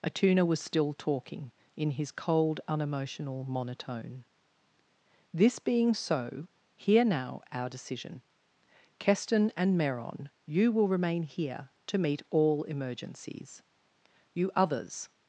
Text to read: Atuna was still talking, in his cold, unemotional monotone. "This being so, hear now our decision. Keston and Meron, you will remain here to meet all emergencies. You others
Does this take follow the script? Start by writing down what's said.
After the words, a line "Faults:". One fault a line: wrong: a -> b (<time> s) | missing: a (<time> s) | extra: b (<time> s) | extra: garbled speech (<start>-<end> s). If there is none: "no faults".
Atuna was still talking, in his cold, unemotional monotone. "This being so, hear now our decision. Keston and Meron, you will remain here to meet all emergencies. You others
Faults:
no faults